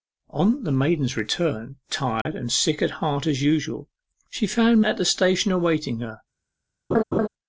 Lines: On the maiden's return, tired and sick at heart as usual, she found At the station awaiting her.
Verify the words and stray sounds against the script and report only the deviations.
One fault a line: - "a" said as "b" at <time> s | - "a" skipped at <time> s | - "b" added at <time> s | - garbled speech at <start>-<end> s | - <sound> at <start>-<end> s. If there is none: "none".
- dropout at 2.2-2.3 s
- laugh at 6.9-7.3 s